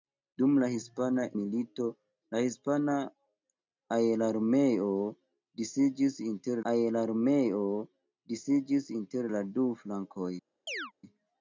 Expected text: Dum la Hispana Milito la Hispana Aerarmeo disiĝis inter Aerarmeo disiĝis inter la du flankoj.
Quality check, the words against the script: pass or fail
pass